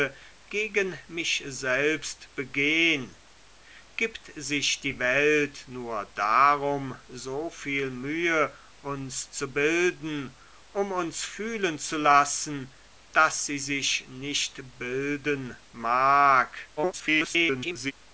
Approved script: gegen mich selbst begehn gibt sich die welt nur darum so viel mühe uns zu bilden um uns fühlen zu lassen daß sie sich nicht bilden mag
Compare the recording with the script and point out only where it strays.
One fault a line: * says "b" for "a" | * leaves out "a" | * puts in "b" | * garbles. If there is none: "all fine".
* garbles